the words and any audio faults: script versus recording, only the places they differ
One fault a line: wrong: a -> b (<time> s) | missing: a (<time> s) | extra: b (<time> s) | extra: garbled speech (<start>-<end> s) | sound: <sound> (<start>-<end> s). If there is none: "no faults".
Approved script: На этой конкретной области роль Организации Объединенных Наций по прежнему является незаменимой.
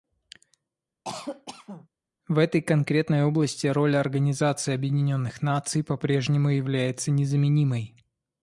sound: cough (1.0-1.9 s)
wrong: На -> В (2.3 s)